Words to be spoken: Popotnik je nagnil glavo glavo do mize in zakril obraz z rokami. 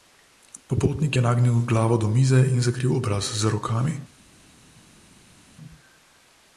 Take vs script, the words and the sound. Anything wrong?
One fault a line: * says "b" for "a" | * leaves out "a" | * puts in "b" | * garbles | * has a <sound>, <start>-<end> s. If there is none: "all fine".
* leaves out "glavo"